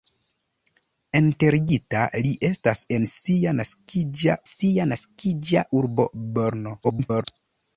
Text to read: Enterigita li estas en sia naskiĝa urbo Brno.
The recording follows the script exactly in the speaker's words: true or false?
false